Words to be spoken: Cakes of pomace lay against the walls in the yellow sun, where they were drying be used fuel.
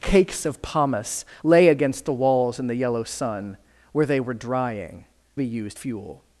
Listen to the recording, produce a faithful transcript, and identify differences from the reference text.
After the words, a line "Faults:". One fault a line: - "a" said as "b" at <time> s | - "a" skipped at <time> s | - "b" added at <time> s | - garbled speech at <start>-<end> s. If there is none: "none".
Cakes of pomace lay against the walls in the yellow sun, where they were drying be used fuel.
Faults:
none